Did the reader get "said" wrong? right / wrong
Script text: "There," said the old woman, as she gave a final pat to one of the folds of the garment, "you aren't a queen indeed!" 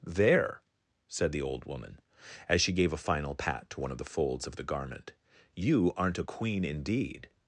right